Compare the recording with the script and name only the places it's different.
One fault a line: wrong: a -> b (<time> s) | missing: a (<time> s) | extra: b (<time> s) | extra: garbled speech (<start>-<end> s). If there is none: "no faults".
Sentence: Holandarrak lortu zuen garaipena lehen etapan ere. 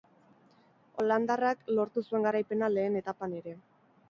no faults